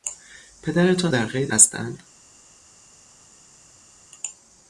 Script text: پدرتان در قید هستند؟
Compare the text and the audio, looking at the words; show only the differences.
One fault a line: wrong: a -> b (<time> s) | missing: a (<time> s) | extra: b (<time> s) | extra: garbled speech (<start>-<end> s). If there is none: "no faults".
no faults